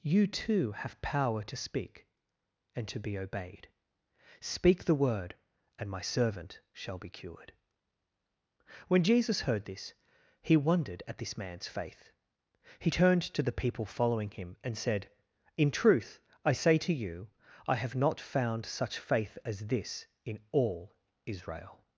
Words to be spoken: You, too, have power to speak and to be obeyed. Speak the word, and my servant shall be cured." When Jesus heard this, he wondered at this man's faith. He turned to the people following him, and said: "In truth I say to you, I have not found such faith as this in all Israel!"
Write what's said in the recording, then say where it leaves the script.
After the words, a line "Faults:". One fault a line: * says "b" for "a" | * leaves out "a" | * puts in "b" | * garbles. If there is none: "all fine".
You, too, have power to speak and to be obeyed. Speak the word, and my servant shall be cured." When Jesus heard this, he wondered at this man's faith. He turned to the people following him, and said: "In truth I say to you, I have not found such faith as this in all Israel!"
Faults:
all fine